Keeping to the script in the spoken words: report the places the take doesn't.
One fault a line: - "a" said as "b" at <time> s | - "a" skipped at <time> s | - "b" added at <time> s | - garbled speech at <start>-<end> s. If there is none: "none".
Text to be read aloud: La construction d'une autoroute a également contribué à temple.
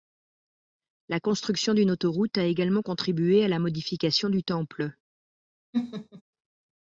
- "la modification du" added at 3.5 s